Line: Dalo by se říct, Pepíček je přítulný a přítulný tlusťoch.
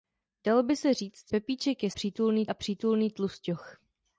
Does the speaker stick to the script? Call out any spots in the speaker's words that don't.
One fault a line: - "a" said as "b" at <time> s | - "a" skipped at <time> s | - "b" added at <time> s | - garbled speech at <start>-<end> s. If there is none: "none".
none